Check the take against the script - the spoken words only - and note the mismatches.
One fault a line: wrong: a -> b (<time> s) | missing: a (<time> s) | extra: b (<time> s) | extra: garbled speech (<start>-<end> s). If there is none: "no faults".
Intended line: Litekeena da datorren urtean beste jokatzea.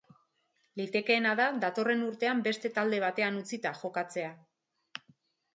extra: talde batean utzita (2.8 s)